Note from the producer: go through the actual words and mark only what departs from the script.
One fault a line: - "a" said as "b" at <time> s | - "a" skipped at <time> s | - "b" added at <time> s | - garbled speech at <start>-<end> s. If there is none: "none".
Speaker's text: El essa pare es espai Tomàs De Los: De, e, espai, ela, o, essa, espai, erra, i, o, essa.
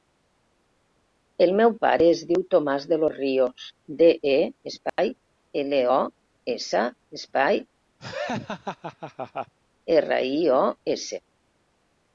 - "essa" said as "meu" at 1.6 s
- "espai" said as "diu" at 2.3 s
- "Rios" added at 3.2 s